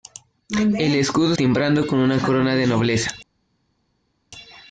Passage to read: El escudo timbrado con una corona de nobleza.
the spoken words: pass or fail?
pass